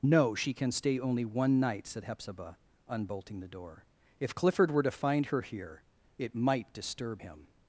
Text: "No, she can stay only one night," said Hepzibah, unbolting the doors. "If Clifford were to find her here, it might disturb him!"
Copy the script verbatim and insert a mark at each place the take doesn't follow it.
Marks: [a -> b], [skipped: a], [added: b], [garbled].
"No, she can stay only one night," said Hepzibah, unbolting the [doors. -> door] "If Clifford were to find her here, it might disturb him!"